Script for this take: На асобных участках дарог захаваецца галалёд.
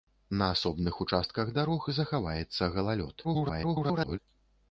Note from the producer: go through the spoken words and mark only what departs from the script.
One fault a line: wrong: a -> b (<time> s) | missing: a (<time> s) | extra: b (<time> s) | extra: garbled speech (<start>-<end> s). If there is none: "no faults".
extra: garbled speech (3.2-4.2 s)